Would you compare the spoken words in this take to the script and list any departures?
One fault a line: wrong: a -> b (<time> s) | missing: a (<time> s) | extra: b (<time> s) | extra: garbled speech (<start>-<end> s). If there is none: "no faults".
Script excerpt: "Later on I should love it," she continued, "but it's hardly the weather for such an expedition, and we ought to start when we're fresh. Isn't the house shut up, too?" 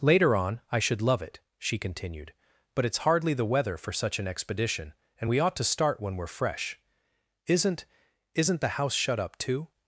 extra: Isn't (8.3 s)